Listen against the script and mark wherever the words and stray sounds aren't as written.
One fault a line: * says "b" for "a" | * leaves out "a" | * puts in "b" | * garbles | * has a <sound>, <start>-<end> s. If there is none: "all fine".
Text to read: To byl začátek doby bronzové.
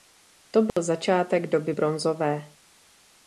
* has a dropout, 0.7-0.8 s